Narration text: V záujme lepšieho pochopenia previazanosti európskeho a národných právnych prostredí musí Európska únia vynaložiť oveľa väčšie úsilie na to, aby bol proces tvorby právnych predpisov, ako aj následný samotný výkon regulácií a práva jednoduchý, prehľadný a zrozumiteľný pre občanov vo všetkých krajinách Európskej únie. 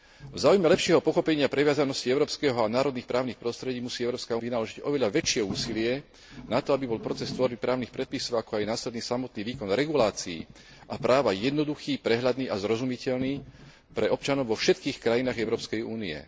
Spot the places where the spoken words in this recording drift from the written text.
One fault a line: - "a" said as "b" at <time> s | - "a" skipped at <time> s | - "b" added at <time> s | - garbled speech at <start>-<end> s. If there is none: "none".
- "únia" skipped at 4.4 s